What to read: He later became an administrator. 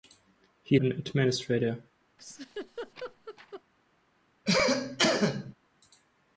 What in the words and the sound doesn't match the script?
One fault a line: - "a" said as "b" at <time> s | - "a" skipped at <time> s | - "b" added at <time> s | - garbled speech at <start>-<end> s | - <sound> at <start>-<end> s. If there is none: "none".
- "later became" skipped at 0.8 s
- laugh at 2.2-3.6 s
- cough at 4.5-5.5 s